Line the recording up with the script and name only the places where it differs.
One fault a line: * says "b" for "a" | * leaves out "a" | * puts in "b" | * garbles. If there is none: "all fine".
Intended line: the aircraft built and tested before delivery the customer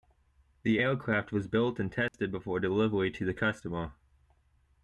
* puts in "was"
* puts in "to"